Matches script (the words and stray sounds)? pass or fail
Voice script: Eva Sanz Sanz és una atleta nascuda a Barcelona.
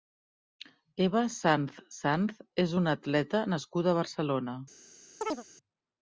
fail